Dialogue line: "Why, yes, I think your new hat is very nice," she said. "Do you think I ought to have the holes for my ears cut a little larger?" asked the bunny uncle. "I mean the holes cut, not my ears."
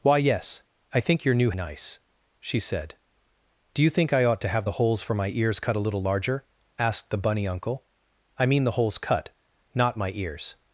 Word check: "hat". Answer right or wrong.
wrong